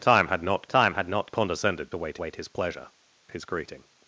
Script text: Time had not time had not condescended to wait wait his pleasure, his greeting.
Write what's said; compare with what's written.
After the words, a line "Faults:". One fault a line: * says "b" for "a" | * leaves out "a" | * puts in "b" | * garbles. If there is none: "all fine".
Time had not time had not condescended to wait wait his pleasure, his greeting.
Faults:
all fine